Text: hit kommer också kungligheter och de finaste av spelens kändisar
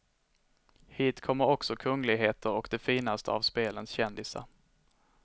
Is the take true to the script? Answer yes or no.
yes